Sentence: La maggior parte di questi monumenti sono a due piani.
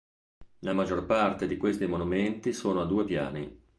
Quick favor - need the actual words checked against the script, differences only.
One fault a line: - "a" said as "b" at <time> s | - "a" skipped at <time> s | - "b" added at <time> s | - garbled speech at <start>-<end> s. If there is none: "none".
none